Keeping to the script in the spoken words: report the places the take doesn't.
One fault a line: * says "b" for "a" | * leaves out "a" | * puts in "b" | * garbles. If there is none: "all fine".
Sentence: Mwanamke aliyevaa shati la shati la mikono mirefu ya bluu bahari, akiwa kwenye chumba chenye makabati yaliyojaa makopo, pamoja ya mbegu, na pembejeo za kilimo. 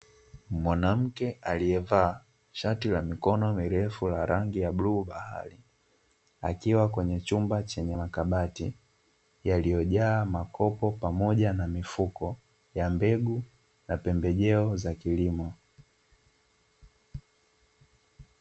* says "mikono mirefu" for "shati"
* says "rangi" for "mikono mirefu"
* puts in "na mifuko"